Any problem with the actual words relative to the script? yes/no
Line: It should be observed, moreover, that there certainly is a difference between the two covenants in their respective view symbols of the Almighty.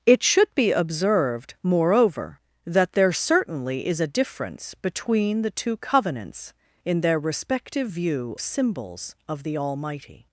no